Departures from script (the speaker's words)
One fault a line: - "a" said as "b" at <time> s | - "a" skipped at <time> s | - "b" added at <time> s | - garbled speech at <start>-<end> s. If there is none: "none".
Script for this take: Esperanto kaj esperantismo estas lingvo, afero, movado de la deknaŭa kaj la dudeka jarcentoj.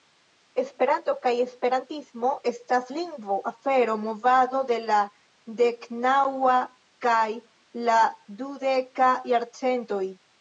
none